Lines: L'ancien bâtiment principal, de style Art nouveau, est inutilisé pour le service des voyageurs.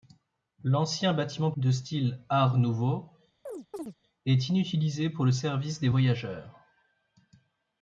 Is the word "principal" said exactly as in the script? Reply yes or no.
no